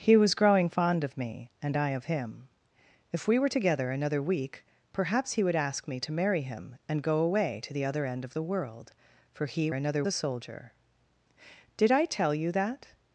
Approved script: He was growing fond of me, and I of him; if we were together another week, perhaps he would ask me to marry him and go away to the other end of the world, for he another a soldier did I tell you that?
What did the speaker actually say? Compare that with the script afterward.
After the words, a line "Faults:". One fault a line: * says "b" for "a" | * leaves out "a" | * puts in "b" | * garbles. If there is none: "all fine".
He was growing fond of me, and I of him; if we were together another week, perhaps he would ask me to marry him and go away to the other end of the world, for he another a soldier did I tell you that?
Faults:
all fine